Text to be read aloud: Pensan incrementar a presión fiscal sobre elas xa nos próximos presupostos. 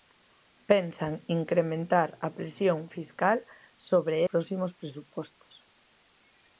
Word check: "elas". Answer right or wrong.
wrong